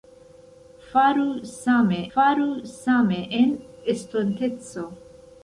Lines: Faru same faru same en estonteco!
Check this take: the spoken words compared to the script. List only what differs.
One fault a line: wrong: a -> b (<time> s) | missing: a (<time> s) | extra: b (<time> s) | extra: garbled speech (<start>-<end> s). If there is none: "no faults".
no faults